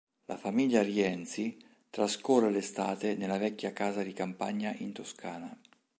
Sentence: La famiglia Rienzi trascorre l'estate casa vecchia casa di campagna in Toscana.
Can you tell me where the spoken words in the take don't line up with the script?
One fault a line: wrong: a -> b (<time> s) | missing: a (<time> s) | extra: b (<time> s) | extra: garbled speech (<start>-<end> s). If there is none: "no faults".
wrong: casa -> nella (3.2 s)